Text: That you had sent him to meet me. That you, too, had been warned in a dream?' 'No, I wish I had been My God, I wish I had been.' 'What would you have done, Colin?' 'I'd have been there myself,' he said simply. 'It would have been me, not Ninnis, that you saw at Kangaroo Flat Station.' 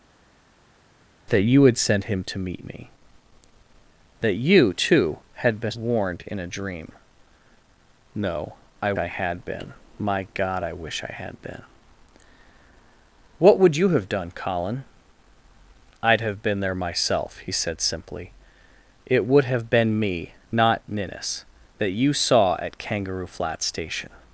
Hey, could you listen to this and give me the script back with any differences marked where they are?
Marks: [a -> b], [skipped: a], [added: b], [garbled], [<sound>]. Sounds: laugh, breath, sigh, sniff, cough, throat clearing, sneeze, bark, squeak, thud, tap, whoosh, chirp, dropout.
That you had sent him to meet me. That you, too, had been warned in a dream?' 'No, I [skipped: wish] I had been My God, I wish I had been.' 'What would you have done, Colin?' 'I'd have been there myself,' he said simply. 'It would have been me, not Ninnis, that you saw at Kangaroo Flat Station.'